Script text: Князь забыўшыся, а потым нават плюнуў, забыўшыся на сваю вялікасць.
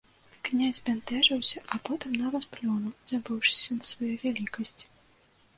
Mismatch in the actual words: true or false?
true